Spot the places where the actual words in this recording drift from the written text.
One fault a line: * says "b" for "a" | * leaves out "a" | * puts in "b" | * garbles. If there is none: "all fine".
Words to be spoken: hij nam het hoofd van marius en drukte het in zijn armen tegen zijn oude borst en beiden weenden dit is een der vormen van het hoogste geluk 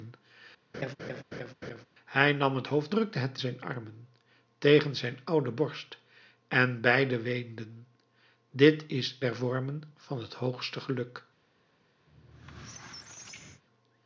* leaves out "van marius en"
* leaves out "in"
* leaves out "een"